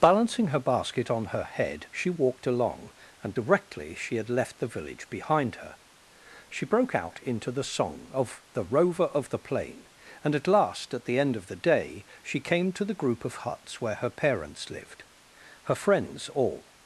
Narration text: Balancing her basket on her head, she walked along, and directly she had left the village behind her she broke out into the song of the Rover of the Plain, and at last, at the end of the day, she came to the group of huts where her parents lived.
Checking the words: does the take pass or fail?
fail